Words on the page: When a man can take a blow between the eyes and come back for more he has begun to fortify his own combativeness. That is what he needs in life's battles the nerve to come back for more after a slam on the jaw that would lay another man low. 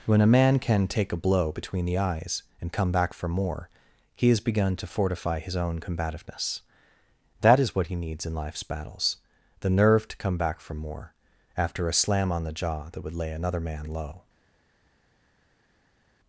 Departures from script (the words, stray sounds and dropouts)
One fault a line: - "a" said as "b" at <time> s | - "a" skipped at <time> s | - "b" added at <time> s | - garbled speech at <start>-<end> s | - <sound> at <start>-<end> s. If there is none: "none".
none